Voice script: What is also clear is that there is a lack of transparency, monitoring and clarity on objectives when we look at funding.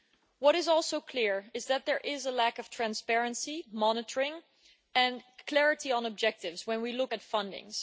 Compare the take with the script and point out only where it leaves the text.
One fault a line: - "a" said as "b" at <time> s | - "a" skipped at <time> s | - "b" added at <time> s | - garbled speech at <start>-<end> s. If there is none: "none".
none